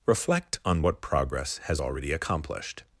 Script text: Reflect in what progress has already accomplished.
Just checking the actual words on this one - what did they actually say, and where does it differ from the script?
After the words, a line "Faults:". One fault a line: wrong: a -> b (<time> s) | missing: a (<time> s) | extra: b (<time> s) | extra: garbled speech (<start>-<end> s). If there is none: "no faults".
Reflect on what progress has already accomplished.
Faults:
wrong: in -> on (0.7 s)